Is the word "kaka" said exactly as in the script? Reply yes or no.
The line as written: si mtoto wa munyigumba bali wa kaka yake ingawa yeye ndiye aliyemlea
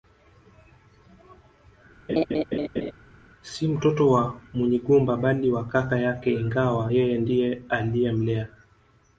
yes